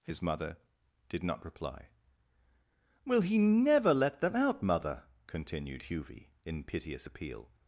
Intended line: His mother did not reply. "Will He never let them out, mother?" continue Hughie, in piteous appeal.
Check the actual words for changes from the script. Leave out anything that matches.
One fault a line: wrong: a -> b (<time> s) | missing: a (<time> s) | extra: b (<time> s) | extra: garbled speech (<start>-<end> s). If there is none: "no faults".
wrong: continue -> continued (5.3 s)